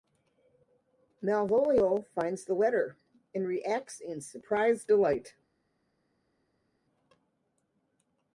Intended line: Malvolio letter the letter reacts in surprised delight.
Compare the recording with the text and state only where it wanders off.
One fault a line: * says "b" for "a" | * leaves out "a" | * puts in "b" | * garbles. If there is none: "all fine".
* says "finds" for "letter"
* puts in "and"